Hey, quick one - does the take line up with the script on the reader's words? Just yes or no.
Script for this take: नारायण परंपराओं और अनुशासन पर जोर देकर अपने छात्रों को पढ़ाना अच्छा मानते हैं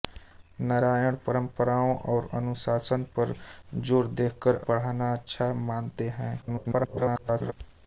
no